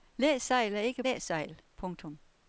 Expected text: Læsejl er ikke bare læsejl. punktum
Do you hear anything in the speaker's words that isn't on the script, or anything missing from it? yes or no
yes